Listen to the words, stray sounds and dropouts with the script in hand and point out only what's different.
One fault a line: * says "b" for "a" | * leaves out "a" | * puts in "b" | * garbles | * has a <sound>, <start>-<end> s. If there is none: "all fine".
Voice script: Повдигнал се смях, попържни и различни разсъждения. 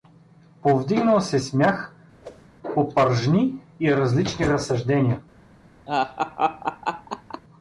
* has a whoosh, 2.2-2.5 s
* has a laugh, 5.9-7.4 s